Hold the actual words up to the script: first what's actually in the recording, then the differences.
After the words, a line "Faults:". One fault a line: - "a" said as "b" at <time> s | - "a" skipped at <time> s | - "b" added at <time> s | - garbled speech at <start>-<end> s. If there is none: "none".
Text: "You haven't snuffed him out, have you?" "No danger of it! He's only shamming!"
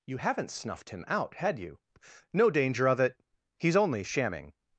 "You haven't snuffed him out, had you?" "No danger of it! He's only shamming!"
Faults:
- "have" said as "had" at 1.4 s